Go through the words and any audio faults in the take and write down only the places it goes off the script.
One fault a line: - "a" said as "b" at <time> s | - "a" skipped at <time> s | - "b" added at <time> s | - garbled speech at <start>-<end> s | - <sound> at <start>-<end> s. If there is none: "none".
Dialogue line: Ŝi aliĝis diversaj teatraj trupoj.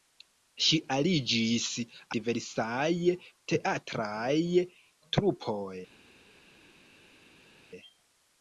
none